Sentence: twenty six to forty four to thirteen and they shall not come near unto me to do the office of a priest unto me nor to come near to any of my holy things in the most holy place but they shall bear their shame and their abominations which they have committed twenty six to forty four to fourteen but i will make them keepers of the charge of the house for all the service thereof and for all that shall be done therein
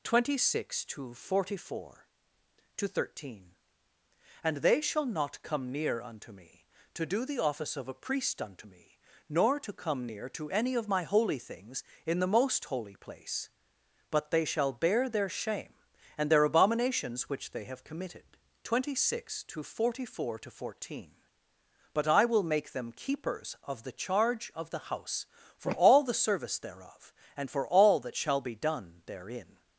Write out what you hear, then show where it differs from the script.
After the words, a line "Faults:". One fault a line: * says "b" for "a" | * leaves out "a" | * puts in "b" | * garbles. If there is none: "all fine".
twenty six to forty four to thirteen and they shall not come near unto me to do the office of a priest unto me nor to come near to any of my holy things in the most holy place but they shall bear their shame and their abominations which they have committed twenty six to forty four to fourteen but i will make them keepers of the charge of the house for all the service thereof and for all that shall be done therein
Faults:
all fine